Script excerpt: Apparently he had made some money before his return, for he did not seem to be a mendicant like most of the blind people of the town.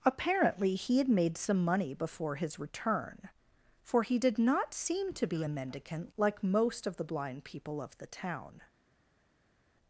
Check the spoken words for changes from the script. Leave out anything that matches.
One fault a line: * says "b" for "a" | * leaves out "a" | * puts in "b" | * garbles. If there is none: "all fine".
all fine